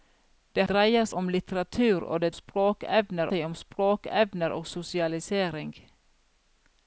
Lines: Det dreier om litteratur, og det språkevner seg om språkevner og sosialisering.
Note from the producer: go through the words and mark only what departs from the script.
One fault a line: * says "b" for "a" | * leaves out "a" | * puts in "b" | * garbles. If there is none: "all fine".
all fine